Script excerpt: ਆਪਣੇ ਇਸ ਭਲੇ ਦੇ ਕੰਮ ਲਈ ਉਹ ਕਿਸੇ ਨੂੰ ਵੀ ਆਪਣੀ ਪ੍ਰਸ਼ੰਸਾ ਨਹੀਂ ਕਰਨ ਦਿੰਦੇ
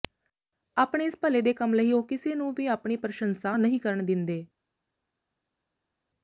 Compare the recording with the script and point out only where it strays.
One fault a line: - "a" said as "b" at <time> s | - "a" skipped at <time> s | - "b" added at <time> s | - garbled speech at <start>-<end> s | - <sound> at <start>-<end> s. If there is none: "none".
none